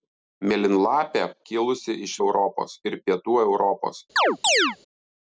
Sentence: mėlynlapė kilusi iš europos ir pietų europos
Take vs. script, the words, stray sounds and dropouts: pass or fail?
fail